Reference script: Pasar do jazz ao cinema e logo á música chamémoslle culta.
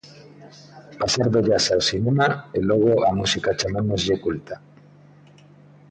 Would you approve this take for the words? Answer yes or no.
yes